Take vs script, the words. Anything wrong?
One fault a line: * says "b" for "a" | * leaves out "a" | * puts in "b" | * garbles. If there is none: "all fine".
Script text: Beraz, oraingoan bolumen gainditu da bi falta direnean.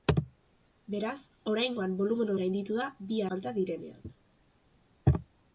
all fine